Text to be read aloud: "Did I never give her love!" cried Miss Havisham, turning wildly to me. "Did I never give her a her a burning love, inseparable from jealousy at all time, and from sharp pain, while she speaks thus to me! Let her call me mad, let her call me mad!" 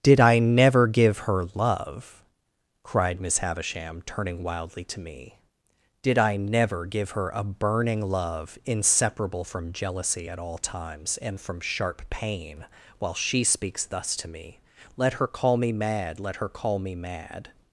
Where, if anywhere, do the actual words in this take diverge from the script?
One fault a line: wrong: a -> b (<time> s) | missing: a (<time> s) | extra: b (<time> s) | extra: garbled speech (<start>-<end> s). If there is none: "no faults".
missing: her a (7.4 s)
wrong: time -> times (10.6 s)